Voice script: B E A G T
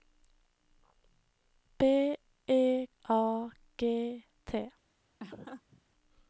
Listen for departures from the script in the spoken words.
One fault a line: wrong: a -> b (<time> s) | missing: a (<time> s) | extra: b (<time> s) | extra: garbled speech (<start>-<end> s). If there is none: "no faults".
no faults